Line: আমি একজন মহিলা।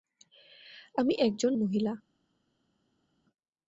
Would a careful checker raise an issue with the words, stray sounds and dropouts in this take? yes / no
no